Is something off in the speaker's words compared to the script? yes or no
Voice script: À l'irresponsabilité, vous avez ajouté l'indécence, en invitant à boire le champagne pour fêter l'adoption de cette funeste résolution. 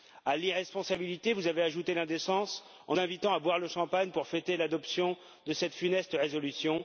no